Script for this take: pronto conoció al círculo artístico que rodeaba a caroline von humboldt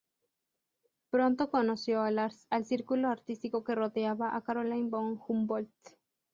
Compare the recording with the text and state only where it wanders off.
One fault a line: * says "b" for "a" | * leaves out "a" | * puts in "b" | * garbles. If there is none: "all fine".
all fine